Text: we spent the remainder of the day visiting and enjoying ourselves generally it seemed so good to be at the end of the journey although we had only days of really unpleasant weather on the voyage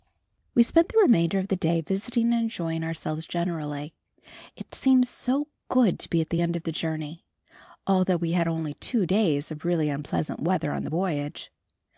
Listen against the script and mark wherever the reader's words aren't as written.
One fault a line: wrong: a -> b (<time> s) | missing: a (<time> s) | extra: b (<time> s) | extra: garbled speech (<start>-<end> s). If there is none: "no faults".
extra: two (8.8 s)